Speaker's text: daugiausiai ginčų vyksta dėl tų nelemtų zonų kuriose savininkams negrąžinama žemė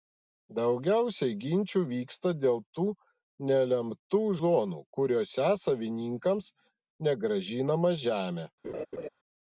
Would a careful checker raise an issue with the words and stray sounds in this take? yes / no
yes